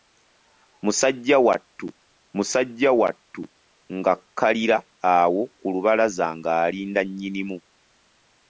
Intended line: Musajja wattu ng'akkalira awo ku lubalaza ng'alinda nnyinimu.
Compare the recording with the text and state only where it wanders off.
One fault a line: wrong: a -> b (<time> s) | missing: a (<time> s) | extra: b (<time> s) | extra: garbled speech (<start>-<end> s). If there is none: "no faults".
extra: musajja wattu (2.3 s)